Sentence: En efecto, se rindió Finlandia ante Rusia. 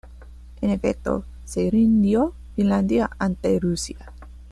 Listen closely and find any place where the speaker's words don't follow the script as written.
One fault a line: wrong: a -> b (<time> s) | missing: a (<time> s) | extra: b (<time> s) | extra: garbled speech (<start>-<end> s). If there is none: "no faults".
no faults